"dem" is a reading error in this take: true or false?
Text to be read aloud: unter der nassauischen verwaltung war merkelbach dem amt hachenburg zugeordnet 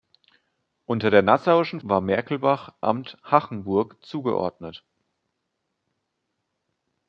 true